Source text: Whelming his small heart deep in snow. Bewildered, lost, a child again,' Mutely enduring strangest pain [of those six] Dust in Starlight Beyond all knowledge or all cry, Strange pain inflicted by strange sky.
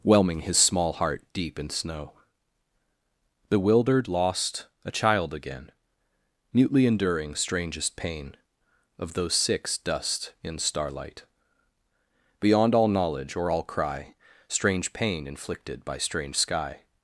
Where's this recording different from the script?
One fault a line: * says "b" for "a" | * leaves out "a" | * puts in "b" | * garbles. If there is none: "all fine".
all fine